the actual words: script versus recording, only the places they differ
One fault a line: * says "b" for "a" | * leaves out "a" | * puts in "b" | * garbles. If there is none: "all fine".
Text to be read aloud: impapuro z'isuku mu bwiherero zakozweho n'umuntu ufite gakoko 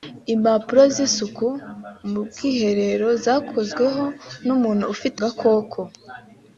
all fine